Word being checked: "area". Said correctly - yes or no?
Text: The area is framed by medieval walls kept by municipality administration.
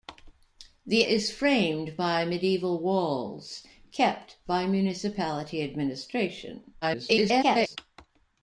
no